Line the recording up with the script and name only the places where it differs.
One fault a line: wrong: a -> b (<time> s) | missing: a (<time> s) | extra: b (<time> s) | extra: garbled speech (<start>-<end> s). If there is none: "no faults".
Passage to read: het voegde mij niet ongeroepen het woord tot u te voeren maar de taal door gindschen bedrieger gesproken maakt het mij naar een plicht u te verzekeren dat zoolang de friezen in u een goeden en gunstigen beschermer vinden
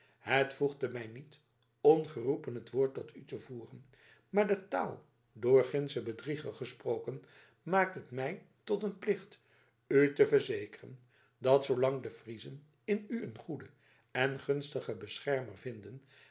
wrong: naar -> tot (8.6 s)